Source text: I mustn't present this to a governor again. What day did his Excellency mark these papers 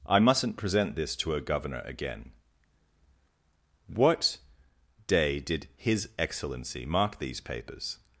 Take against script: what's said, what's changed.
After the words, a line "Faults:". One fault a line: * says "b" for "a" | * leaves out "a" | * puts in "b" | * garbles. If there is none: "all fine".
I mustn't present this to a governor again. What day did his Excellency mark these papers
Faults:
all fine